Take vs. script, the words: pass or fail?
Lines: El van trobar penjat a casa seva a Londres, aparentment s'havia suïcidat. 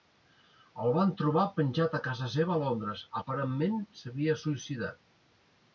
pass